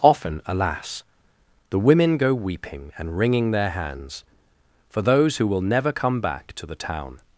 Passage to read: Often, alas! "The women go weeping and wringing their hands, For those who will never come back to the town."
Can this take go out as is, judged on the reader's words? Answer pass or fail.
pass